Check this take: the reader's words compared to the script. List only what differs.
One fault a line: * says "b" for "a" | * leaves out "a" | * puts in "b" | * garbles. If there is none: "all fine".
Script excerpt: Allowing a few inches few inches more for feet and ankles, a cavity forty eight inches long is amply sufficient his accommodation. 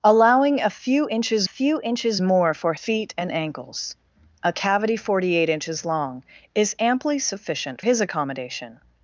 all fine